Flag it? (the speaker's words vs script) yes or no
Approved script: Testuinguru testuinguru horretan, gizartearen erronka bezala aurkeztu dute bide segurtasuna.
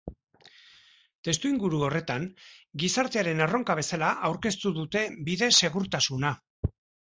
yes